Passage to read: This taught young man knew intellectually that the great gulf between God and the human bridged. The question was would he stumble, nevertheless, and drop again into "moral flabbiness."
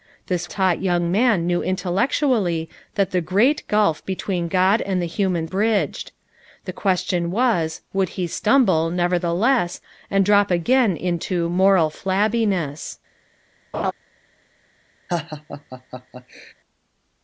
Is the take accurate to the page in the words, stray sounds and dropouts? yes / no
no